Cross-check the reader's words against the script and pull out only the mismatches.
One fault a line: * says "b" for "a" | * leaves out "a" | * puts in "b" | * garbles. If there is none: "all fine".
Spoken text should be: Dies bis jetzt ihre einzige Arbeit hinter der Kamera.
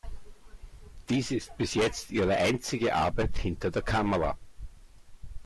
* puts in "ist"